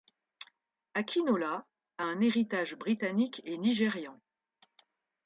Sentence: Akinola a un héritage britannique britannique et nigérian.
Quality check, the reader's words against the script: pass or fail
fail